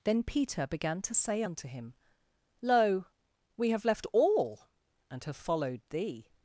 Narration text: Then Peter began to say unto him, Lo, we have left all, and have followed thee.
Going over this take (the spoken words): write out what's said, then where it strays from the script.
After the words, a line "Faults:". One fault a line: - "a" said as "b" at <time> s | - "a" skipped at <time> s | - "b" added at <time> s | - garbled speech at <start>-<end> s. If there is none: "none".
Then Peter began to say unto him, Lo, we have left all, and have followed thee.
Faults:
none